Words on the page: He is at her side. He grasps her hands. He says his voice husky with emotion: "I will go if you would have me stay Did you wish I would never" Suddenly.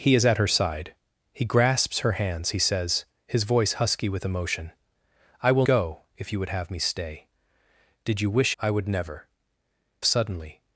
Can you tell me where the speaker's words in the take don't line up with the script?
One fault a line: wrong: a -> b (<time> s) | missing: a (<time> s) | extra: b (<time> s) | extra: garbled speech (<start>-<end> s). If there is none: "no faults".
no faults